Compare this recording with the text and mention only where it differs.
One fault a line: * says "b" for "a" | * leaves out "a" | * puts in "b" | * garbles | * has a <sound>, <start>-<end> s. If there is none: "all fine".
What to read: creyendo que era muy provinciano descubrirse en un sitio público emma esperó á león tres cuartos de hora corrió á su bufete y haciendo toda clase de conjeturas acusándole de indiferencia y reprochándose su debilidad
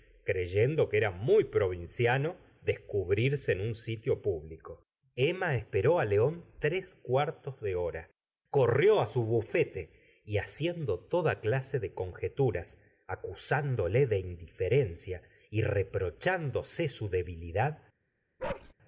* has a bark, 18.4-18.7 s